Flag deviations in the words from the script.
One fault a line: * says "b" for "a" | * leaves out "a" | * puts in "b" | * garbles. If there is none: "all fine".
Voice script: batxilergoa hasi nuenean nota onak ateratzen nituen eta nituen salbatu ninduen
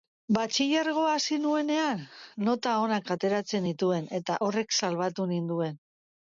* says "horrek" for "nituen"